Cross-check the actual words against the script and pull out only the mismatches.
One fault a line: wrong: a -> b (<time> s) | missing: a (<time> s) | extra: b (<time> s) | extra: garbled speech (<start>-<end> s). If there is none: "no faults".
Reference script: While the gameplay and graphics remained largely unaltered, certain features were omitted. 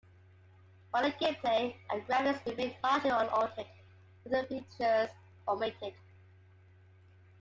missing: were (5.1 s)